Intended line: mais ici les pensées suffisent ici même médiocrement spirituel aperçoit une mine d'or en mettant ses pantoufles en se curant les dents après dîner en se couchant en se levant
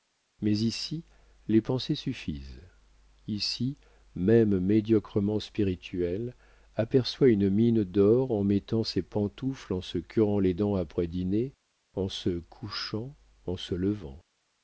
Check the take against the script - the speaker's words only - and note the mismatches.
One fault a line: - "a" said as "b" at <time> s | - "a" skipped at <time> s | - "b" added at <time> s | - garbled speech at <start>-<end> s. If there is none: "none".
none